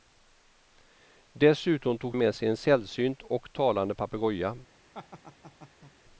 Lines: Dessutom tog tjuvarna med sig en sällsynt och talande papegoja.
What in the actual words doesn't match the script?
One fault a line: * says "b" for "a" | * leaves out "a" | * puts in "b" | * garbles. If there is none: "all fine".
* leaves out "tjuvarna"